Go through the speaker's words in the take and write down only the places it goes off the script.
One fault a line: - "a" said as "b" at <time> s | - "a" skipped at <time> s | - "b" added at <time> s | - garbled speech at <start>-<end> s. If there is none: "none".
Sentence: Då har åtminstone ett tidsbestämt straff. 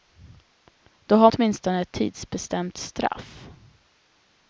none